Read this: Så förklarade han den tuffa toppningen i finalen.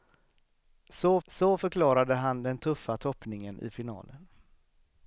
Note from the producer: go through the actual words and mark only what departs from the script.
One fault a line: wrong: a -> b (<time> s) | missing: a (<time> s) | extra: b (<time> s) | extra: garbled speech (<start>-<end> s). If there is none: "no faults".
extra: så (1.3 s)